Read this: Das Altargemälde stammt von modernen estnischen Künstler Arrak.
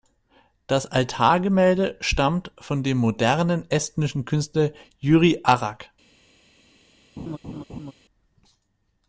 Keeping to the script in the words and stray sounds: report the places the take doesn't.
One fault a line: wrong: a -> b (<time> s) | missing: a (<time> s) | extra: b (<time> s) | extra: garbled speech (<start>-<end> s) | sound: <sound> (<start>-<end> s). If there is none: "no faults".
extra: dem (2.8 s)
extra: Jüri (5.0 s)
sound: laugh (7.2-7.9 s)